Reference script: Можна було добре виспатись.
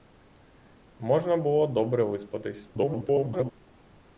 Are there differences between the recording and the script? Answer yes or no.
yes